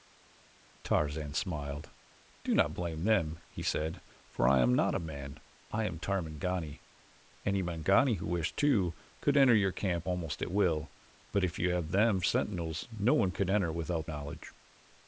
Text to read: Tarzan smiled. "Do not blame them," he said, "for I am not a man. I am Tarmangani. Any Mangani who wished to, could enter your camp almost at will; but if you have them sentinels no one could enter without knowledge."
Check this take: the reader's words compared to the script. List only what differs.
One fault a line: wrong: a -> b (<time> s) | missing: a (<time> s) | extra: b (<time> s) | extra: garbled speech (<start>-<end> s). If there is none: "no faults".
no faults